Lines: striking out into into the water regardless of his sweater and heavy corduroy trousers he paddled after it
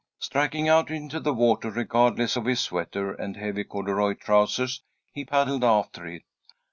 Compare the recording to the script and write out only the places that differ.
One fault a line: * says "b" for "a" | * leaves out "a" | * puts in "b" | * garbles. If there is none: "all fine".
* leaves out "into"